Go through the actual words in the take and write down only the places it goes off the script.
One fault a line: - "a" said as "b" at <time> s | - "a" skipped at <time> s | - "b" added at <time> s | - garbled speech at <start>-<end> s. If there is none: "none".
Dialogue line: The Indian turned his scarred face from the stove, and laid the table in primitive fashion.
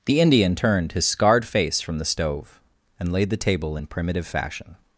none